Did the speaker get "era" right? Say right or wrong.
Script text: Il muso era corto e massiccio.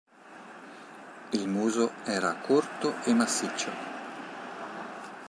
right